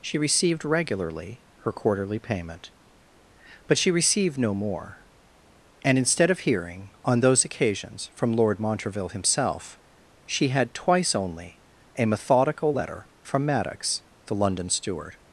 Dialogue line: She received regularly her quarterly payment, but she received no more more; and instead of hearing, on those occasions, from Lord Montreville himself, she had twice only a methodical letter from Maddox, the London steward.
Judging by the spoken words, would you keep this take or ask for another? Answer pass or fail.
fail